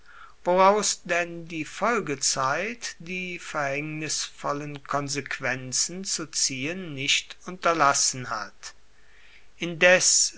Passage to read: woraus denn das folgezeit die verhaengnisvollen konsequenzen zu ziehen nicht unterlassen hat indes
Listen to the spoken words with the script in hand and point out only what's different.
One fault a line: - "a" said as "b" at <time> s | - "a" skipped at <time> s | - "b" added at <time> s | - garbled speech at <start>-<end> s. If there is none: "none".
- "das" said as "die" at 1.5 s